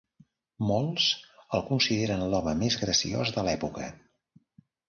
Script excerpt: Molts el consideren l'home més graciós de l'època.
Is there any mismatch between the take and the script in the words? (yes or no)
no